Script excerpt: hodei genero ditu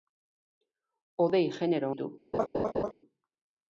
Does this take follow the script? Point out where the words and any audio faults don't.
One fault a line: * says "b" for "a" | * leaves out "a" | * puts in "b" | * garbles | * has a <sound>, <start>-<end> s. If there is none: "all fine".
* has a laugh, 2.3-2.9 s